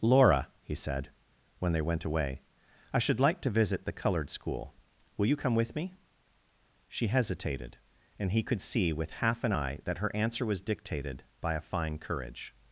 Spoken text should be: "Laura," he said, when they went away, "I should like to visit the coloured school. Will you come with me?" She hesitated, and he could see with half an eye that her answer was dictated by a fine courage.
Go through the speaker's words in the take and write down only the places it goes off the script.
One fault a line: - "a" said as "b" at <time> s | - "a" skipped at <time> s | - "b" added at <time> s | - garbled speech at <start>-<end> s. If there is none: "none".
none